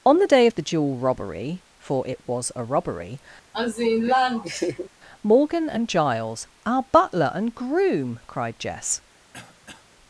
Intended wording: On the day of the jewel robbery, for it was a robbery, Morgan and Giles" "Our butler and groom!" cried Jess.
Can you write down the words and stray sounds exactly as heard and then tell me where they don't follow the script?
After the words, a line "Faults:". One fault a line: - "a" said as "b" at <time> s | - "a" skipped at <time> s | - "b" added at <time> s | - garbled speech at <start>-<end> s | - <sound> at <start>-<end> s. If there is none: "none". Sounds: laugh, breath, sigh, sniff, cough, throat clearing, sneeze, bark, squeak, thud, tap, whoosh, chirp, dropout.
On the day of the jewel robbery, for it was a robbery, Morgan and Giles" "Our butler and groom!" cried Jess.
Faults:
- laugh at 3.5-4.9 s
- throat clearing at 9.3-9.9 s